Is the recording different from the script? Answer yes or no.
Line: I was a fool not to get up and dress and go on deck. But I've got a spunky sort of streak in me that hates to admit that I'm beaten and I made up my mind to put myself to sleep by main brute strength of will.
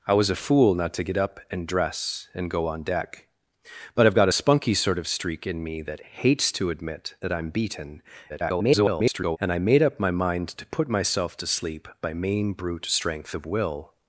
yes